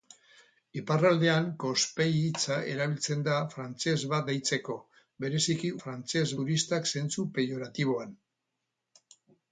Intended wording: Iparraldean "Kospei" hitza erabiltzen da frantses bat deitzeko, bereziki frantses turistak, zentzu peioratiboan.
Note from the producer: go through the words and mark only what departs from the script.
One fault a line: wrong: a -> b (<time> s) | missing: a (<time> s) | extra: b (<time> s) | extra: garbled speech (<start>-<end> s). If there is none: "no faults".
no faults